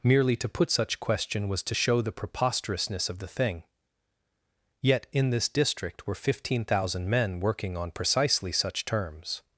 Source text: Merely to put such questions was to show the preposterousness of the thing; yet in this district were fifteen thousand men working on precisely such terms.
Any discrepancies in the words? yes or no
yes